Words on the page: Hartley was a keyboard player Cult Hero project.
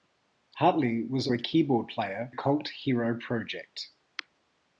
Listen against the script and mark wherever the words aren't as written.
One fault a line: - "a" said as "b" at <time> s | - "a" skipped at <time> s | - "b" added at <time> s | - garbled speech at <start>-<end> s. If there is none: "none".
none